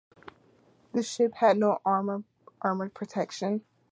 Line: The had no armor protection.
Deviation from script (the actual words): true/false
true